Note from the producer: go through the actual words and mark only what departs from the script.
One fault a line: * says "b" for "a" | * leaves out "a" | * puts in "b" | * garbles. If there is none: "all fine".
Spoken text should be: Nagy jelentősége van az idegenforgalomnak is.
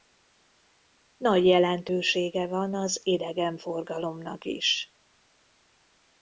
all fine